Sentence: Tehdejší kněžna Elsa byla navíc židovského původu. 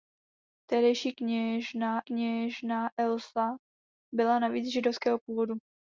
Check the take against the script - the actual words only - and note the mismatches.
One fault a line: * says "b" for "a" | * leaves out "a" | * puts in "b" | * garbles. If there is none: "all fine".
* puts in "kněžna"